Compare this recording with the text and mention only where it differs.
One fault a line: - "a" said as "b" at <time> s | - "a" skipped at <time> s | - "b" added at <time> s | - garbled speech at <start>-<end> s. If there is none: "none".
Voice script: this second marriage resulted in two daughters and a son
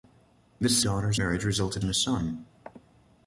- "second" said as "daughters" at 0.8 s
- "in two daughters" skipped at 1.8 s